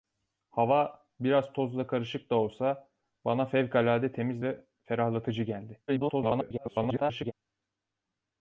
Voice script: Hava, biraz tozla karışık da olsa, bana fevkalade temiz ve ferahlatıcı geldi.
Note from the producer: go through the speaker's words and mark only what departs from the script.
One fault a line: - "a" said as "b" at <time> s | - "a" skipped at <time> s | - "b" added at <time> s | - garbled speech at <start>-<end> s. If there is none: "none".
- garbled speech at 5.9-7.3 s